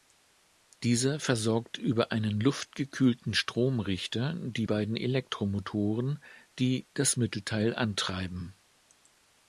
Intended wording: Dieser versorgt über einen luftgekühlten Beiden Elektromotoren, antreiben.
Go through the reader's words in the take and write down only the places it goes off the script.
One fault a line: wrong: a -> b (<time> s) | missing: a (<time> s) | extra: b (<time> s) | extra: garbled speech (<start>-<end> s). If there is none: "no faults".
extra: Stromrichter die (3.3 s)
extra: die das Mittelteil (6.6 s)